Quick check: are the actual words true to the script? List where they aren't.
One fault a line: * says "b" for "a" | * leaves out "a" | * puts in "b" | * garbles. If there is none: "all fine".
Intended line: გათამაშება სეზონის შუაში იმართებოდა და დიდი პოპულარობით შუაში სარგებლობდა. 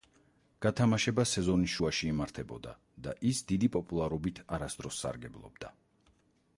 * puts in "ის"
* says "არასდროს" for "შუაში"